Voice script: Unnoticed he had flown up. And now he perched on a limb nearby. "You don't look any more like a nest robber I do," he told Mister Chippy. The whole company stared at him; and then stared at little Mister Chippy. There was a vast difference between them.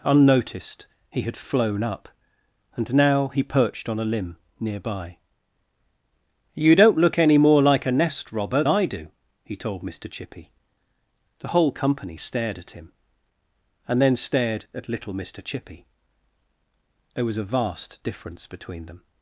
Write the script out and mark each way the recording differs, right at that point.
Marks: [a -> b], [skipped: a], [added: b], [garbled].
Unnoticed he had flown up. And now he perched on a limb nearby. "You don't look any more like a nest robber I do," he told Mister Chippy. The whole company stared at him; and then stared at little Mister Chippy. There was a vast difference between them.